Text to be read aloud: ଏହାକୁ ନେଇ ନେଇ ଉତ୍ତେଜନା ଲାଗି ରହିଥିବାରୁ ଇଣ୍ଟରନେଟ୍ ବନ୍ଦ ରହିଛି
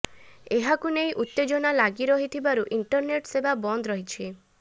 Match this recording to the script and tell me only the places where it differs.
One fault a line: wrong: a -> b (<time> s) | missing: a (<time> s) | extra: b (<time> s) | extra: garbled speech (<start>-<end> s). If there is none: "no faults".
missing: ନେଇ (1.1 s)
extra: ସେବା (3.3 s)